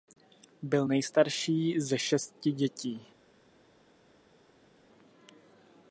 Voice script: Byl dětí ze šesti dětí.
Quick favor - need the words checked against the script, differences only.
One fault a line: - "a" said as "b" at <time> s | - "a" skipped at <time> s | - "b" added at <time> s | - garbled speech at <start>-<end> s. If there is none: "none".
- "dětí" said as "nejstarší" at 0.9 s